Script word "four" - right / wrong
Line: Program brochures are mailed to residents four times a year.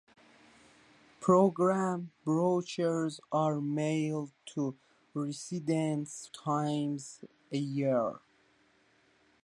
wrong